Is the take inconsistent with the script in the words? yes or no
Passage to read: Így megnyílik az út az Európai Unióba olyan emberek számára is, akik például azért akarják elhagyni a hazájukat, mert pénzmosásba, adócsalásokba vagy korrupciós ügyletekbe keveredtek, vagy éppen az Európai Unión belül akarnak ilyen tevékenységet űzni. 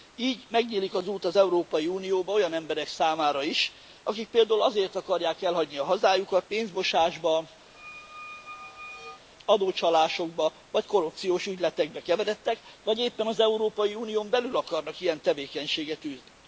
yes